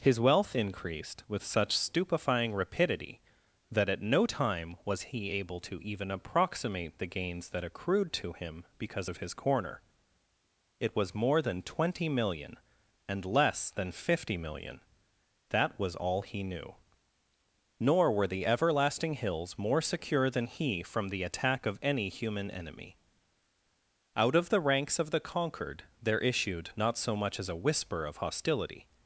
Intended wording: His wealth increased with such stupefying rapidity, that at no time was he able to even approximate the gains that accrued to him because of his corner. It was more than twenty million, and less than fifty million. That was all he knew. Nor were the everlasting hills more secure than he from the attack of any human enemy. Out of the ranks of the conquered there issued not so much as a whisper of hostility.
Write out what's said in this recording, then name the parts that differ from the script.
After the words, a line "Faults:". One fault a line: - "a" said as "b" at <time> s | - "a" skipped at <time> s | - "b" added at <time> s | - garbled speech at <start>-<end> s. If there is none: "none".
His wealth increased with such stupefying rapidity, that at no time was he able to even approximate the gains that accrued to him because of his corner. It was more than twenty million, and less than fifty million. That was all he knew. Nor were the everlasting hills more secure than he from the attack of any human enemy. Out of the ranks of the conquered there issued not so much as a whisper of hostility.
Faults:
none